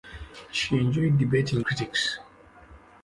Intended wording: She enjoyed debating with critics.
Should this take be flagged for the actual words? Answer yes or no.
yes